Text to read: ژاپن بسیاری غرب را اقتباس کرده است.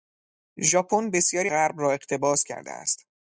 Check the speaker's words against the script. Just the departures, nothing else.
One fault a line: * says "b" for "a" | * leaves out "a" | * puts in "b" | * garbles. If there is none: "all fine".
all fine